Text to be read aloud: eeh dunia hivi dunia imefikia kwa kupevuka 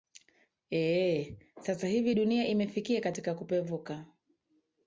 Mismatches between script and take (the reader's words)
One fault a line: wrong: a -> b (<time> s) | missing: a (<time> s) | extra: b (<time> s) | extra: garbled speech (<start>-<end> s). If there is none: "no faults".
wrong: dunia -> sasa (1.6 s)
wrong: kwa -> katika (3.0 s)